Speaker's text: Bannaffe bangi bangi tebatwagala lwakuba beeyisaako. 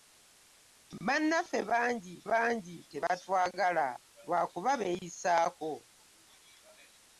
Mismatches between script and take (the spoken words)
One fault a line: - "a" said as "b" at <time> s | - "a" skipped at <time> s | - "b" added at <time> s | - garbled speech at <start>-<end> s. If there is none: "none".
none